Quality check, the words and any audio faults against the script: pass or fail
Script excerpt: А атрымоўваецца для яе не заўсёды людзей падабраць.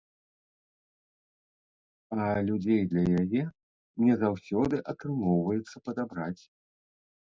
fail